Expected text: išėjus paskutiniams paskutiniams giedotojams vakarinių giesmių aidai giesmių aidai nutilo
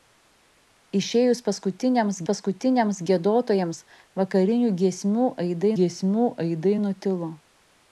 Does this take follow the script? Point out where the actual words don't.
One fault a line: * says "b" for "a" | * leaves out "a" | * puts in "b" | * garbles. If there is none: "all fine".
all fine